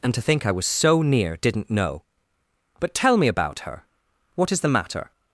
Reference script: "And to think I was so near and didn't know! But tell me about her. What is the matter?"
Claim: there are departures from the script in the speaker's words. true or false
true